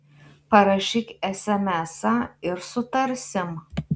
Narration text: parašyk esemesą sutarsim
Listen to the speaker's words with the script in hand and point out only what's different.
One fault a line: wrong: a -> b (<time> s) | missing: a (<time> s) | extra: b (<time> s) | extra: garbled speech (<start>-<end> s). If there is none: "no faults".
extra: ir (2.5 s)